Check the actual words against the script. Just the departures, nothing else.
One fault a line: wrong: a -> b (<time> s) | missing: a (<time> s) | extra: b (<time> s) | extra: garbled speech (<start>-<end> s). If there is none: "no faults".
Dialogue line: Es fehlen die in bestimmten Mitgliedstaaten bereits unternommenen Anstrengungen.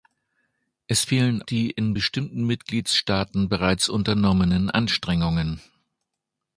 no faults